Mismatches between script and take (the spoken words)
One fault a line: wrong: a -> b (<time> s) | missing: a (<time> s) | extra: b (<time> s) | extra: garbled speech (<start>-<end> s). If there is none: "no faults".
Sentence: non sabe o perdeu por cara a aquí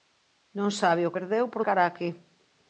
no faults